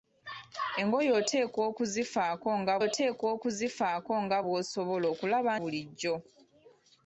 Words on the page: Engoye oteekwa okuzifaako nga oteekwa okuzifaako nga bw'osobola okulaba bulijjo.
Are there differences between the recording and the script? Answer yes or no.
no